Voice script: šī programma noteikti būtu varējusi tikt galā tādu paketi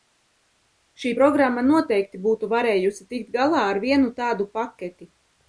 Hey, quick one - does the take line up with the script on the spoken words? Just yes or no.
no